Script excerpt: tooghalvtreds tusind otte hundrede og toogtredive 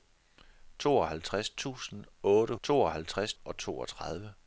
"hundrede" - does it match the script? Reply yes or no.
no